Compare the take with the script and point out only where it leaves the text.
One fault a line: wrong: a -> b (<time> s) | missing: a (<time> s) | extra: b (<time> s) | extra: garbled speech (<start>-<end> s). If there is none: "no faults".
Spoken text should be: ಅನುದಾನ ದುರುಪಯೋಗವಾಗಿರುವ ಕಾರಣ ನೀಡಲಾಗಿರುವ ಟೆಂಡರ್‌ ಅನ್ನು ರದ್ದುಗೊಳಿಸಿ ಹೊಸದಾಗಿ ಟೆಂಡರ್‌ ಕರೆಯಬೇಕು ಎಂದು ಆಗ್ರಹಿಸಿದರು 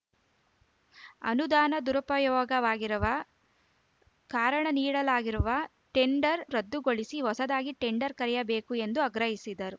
missing: ಅನ್ನು (6.4 s)